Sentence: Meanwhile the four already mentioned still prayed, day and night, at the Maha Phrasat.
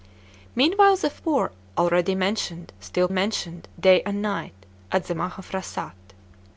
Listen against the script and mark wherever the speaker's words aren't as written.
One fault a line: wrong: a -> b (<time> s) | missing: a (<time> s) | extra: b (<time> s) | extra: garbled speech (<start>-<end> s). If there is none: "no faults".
wrong: prayed -> mentioned (3.1 s)